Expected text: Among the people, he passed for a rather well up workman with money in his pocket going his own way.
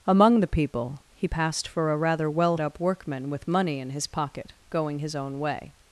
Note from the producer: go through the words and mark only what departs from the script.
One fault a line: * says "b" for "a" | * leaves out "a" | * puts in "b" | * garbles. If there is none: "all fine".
all fine